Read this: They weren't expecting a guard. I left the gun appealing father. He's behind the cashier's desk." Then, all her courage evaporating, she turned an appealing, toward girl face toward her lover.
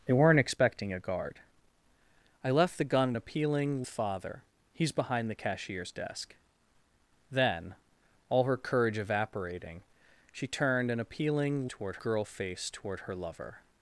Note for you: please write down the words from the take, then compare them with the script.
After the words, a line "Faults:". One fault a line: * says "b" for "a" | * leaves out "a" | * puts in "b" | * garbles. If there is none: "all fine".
They weren't expecting a guard. I left the gun appealing father. He's behind the cashier's desk." Then, all her courage evaporating, she turned an appealing, toward girl face toward her lover.
Faults:
all fine